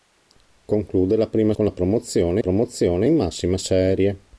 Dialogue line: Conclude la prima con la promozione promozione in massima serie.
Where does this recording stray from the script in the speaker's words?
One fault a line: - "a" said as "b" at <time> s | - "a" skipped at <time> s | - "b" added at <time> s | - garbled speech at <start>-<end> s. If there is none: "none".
none